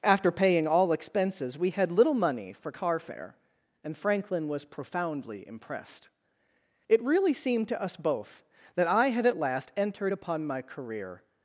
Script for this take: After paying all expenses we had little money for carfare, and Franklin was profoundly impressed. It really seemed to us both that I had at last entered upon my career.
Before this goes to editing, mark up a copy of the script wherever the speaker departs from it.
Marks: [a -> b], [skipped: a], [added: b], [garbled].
After paying all expenses we had little money for carfare, and Franklin was profoundly impressed. It really seemed to us both that I had at last entered upon my career.